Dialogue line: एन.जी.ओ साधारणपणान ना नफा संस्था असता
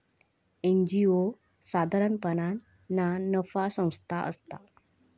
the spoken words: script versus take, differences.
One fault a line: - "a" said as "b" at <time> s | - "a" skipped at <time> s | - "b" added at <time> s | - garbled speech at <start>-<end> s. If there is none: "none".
none